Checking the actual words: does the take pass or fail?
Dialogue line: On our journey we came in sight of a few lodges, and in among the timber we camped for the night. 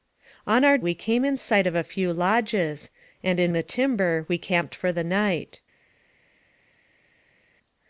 fail